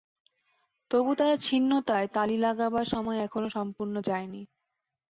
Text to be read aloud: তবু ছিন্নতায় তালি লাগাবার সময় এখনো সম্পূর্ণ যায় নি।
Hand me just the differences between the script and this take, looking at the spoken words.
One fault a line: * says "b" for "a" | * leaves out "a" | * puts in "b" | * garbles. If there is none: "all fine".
* puts in "তার"